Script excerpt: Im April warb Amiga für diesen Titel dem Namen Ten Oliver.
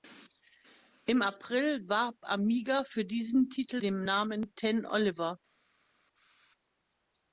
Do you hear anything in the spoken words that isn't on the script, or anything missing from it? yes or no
no